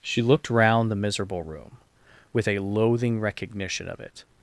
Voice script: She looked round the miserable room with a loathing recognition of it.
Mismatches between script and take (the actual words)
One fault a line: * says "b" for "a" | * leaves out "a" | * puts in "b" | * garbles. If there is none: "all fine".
all fine